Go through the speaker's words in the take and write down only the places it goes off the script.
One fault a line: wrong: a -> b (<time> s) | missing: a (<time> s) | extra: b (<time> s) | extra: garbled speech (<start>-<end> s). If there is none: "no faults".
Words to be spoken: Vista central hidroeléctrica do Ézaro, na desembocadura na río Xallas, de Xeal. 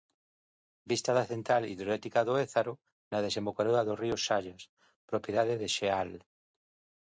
extra: da (1.2 s)
wrong: na -> do (3.9 s)
extra: propiedade (5.1 s)